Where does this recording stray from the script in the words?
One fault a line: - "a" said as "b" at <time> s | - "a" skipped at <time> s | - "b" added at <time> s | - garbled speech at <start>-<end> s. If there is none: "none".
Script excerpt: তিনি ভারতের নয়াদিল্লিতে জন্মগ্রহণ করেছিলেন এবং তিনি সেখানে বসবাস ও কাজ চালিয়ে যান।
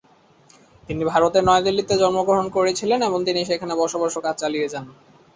none